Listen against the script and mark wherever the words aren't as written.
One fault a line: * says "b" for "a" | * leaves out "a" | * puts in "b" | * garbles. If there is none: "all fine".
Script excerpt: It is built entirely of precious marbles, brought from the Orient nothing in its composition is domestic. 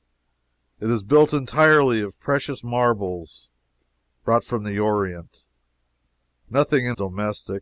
* leaves out "its composition is"